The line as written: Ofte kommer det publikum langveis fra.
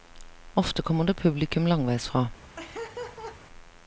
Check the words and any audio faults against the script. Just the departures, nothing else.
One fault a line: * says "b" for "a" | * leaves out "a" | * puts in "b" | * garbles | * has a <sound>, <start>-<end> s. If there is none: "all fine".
* has a laugh, 2.6-3.4 s